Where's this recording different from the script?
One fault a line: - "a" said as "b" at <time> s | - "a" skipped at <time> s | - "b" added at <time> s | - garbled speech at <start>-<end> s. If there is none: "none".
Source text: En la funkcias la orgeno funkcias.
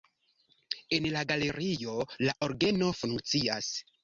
- "funkcias" said as "galerio" at 1.3 s